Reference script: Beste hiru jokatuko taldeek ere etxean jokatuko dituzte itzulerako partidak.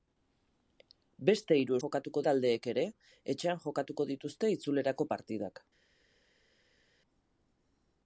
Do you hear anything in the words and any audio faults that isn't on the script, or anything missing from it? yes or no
no